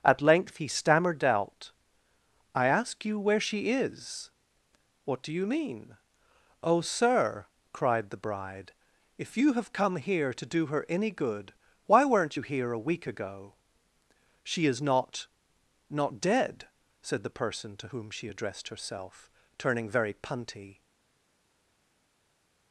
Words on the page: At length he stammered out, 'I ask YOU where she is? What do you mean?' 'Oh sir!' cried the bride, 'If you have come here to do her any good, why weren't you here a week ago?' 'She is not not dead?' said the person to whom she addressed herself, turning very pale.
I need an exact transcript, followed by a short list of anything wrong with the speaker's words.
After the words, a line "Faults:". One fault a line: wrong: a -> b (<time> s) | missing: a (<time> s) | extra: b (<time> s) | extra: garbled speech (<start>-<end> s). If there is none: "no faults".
At length he stammered out, 'I ask YOU where she is? What do you mean?' 'Oh sir!' cried the bride, 'If you have come here to do her any good, why weren't you here a week ago?' 'She is not not dead?' said the person to whom she addressed herself, turning very punty.
Faults:
wrong: pale -> punty (20.1 s)